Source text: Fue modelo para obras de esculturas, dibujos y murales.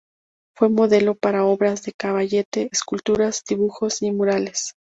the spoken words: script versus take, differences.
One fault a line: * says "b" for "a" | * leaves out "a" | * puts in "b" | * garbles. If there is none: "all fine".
* puts in "caballete"